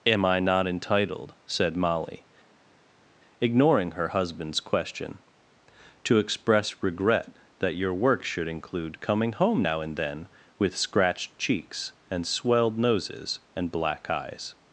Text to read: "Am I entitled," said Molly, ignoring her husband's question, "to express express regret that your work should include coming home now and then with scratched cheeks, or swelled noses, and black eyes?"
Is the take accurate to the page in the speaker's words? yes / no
no